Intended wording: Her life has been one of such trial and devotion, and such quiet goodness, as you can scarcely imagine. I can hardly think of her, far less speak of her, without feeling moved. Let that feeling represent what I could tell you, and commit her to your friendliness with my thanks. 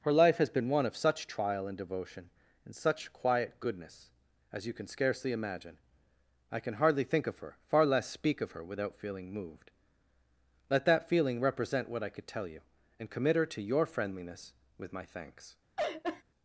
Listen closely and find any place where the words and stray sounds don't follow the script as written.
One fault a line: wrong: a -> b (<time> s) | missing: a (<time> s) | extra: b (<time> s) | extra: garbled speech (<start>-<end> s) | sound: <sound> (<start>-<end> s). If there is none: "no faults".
sound: laugh (15.8-16.2 s)